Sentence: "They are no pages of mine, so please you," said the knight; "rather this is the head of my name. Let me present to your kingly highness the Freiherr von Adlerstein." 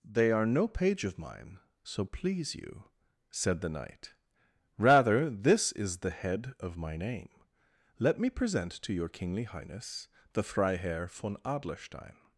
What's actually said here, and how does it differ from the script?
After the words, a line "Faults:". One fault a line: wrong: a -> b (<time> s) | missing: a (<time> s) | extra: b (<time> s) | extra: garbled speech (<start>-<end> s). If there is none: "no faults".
"They are no page of mine, so please you," said the knight; "rather this is the head of my name. Let me present to your kingly highness the Freiherr von Adlerstein."
Faults:
wrong: pages -> page (0.7 s)